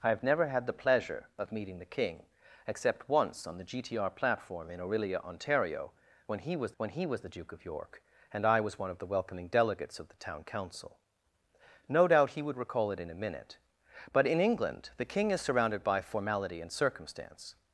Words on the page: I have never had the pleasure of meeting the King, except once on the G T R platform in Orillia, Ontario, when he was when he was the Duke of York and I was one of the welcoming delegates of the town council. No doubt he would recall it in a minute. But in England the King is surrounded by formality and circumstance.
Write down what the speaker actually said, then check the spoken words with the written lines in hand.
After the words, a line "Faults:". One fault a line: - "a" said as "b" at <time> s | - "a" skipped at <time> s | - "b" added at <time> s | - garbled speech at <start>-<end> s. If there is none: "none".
I have never had the pleasure of meeting the King, except once on the G T R platform in Orillia, Ontario, when he was when he was the Duke of York and I was one of the welcoming delegates of the town council. No doubt he would recall it in a minute. But in England the King is surrounded by formality and circumstance.
Faults:
none